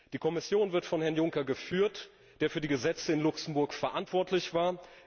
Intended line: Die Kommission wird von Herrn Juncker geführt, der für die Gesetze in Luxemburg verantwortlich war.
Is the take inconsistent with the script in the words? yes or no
no